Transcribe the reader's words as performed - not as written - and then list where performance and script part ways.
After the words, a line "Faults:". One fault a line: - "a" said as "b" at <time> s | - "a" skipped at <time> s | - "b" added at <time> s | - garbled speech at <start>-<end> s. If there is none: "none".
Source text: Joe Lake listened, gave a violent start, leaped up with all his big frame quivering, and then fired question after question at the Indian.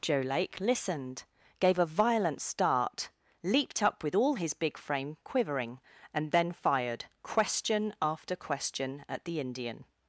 Joe Lake listened, gave a violent start, leaped up with all his big frame quivering, and then fired question after question at the Indian.
Faults:
none